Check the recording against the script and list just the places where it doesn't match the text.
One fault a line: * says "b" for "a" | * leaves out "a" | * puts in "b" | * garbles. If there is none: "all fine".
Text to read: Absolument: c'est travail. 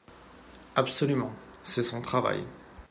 * puts in "son"